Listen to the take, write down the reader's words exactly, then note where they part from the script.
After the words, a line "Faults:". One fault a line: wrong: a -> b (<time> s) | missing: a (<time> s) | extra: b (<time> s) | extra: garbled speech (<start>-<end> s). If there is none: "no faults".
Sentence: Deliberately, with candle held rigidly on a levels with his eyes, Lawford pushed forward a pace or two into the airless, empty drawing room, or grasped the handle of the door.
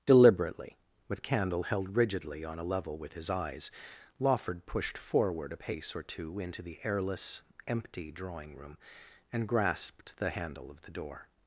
Deliberately, with candle held rigidly on a level with his eyes, Lawford pushed forward a pace or two into the airless, empty drawing room, and grasped the handle of the door.
Faults:
wrong: levels -> level (2.6 s)
wrong: or -> and (9.3 s)